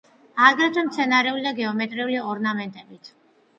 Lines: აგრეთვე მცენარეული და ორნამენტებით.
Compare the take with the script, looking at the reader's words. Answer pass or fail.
fail